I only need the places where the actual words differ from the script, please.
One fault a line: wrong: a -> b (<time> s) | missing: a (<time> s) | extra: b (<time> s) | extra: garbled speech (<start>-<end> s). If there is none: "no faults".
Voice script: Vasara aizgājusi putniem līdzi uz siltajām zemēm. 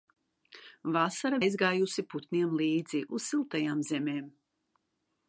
no faults